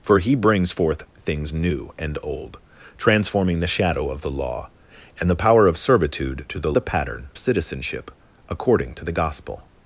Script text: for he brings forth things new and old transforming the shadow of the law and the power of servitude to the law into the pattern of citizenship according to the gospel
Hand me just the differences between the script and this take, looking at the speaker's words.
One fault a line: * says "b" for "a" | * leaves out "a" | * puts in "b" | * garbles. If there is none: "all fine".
* leaves out "law into"
* leaves out "of"